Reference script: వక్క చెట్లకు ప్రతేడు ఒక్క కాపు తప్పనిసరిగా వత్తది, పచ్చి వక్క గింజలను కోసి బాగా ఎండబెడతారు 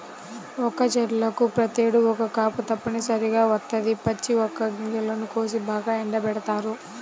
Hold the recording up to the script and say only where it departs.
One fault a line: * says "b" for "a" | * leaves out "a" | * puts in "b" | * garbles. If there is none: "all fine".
all fine